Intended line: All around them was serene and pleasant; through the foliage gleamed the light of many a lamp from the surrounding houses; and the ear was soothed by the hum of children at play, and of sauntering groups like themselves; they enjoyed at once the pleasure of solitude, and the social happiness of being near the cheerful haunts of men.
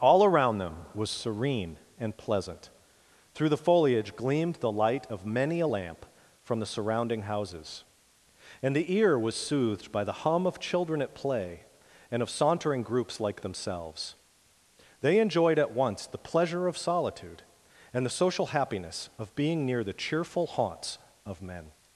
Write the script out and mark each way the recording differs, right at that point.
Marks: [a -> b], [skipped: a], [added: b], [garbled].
All around them was serene and pleasant; through the foliage gleamed the light of many a lamp from the surrounding houses; and the ear was soothed by the hum of children at play, and of sauntering groups like themselves; they enjoyed at once the pleasure of solitude, and the social happiness of being near the cheerful haunts of men.